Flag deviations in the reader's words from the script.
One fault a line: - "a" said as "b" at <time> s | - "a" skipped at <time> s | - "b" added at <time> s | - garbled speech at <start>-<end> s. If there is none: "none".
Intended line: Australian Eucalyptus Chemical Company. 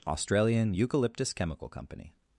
none